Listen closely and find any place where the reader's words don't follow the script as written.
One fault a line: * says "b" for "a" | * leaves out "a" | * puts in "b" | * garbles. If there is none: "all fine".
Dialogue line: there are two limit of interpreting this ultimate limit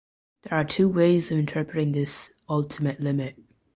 * says "ways" for "limit"